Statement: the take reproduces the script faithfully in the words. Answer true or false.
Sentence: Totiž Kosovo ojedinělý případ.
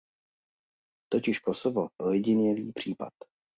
true